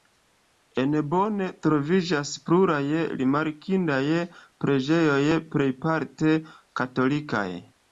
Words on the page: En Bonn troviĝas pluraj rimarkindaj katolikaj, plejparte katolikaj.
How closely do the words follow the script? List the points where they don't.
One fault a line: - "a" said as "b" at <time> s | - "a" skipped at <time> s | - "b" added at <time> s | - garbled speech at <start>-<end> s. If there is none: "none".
- "katolikaj" said as "preĝejoj" at 4.6 s